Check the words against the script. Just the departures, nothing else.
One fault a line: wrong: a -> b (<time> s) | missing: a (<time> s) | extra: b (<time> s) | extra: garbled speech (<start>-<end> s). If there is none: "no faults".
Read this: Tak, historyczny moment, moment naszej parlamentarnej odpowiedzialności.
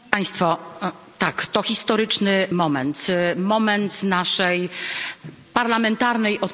extra: to (1.4 s)